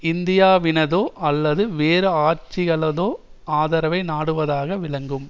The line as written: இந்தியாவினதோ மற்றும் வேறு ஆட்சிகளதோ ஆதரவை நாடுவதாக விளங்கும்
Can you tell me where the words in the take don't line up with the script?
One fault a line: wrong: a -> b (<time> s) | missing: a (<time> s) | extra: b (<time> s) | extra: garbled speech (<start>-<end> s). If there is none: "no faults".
wrong: மற்றும் -> அல்லது (1.2 s)